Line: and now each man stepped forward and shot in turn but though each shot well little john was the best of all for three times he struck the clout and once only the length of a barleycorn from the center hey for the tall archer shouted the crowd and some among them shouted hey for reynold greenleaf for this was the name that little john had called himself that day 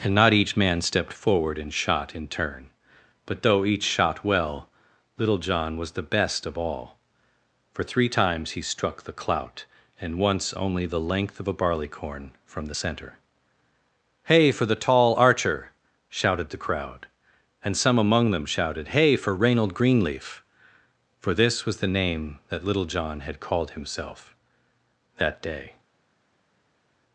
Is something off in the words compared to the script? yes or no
yes